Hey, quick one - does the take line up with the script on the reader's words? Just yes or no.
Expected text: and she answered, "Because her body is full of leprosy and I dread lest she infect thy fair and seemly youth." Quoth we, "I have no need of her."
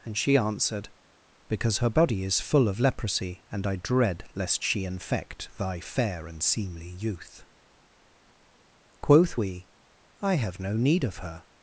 yes